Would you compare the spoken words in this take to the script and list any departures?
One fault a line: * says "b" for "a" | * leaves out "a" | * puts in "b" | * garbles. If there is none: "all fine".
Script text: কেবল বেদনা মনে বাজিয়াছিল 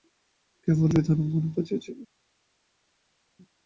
all fine